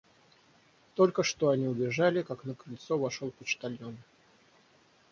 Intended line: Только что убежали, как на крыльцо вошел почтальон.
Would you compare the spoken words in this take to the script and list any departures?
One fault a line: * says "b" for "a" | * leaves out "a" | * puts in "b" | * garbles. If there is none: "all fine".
* puts in "они"